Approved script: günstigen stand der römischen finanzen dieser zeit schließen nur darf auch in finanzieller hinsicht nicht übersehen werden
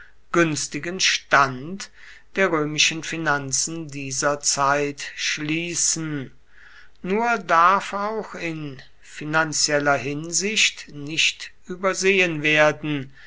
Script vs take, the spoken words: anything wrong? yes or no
no